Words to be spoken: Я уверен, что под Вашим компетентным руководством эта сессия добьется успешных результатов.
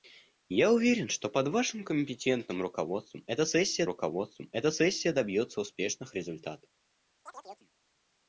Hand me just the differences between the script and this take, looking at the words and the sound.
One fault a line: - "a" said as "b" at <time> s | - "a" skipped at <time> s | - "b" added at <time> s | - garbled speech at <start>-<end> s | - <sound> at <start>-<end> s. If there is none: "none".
- "руководством эта сессия" added at 3.9 s
- chirp at 7.3-7.7 s